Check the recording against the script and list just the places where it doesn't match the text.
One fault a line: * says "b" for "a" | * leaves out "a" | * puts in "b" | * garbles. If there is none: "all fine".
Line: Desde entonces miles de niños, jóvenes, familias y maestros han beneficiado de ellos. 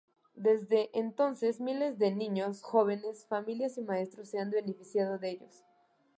* puts in "se"